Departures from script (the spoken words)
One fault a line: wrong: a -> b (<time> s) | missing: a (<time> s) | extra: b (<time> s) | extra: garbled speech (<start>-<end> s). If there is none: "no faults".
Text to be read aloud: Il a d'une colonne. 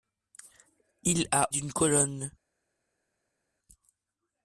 no faults